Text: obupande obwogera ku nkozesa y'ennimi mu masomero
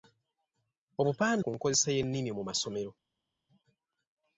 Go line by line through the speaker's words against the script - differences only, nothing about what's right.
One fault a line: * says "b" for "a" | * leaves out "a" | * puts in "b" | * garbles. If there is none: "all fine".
* leaves out "obwogera"